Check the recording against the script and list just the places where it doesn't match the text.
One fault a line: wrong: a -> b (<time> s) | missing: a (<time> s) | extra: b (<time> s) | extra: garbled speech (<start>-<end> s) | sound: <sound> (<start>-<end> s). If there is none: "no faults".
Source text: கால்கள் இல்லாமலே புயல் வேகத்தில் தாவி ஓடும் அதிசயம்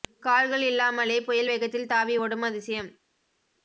no faults